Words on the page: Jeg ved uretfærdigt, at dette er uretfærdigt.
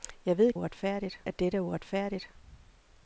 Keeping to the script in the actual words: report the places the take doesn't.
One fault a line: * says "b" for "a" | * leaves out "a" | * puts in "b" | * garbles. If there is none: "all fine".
all fine